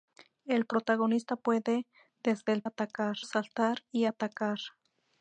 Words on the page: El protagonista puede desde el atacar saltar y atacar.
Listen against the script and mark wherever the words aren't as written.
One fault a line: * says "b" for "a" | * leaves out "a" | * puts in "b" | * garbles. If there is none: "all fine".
all fine